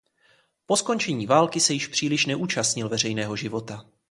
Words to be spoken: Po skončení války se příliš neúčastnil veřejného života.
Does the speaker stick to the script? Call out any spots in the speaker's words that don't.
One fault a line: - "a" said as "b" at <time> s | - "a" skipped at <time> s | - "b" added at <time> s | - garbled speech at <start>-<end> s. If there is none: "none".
- "již" added at 1.7 s